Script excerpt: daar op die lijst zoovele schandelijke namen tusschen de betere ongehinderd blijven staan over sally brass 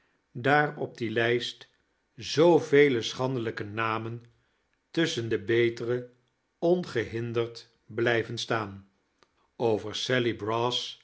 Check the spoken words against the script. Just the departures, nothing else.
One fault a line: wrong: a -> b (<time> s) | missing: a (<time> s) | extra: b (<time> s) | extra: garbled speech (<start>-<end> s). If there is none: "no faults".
no faults